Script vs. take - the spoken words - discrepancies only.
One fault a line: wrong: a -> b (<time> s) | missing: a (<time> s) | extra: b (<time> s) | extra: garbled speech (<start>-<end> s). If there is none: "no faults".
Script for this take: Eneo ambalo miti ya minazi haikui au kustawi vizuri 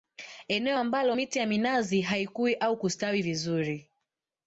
no faults